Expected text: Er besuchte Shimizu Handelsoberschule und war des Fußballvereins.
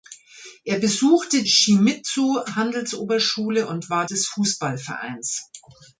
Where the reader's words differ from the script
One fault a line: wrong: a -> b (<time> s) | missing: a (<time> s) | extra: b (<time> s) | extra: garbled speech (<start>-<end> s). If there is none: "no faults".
no faults